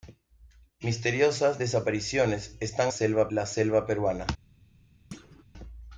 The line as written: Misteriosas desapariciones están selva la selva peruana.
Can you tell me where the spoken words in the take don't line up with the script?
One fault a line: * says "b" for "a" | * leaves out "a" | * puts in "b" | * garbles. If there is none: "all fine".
all fine